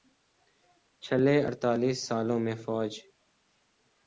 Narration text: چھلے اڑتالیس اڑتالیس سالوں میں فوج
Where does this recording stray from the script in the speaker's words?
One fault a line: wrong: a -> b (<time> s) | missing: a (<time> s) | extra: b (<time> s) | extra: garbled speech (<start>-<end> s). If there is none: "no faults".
missing: اڑتالیس (2.0 s)